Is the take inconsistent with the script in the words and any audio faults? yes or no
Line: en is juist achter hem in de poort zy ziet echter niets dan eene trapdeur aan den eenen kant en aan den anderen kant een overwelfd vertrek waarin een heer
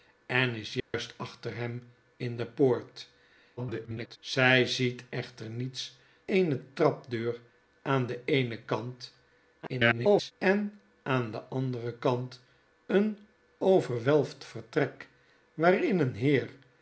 yes